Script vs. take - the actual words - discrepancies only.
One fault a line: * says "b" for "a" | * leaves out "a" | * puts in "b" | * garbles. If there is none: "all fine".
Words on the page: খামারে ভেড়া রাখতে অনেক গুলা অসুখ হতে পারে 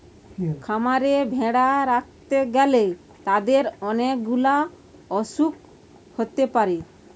* puts in "গ্যালে তাদের"